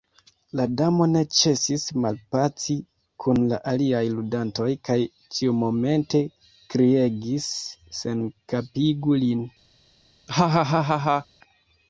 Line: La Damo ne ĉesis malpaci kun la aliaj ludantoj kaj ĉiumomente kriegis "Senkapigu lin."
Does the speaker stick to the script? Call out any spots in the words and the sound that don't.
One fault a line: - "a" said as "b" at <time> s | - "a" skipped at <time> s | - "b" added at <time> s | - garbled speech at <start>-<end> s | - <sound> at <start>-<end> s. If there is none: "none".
- laugh at 10.3-11.3 s